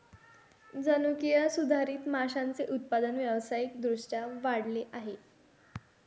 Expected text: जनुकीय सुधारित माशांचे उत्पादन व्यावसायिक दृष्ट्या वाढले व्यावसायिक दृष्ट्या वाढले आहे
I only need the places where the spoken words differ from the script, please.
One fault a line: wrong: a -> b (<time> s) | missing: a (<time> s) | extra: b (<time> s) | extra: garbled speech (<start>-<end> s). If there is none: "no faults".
missing: व्यावसायिक दृष्ट्या वाढले (4.8 s)